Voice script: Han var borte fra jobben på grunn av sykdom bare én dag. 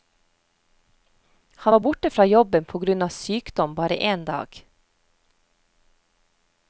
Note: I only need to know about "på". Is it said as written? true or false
true